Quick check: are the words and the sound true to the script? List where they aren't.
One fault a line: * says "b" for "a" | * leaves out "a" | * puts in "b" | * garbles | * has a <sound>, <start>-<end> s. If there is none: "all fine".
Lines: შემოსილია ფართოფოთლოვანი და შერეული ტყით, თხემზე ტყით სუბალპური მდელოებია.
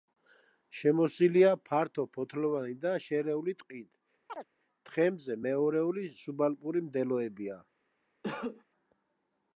* has a chirp, 4.3-4.5 s
* says "მეორეული" for "ტყით"
* has a cough, 8.2-8.6 s